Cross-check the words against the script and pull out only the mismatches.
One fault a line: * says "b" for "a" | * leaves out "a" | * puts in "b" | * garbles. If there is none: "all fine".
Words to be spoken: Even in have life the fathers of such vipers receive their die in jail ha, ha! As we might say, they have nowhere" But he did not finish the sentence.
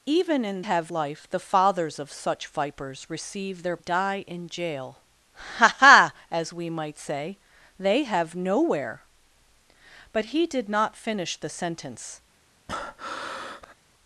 all fine